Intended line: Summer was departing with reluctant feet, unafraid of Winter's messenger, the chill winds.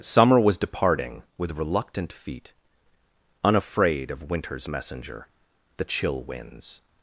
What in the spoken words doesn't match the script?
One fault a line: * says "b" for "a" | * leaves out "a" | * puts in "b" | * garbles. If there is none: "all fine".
all fine